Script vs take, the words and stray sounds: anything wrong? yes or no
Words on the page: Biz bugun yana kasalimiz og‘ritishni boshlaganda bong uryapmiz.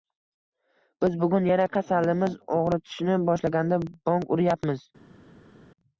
no